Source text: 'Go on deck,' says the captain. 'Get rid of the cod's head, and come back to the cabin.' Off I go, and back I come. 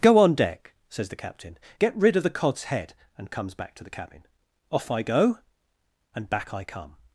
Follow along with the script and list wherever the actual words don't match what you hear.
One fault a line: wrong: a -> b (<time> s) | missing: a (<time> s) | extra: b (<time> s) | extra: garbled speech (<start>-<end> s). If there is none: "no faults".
wrong: come -> comes (3.3 s)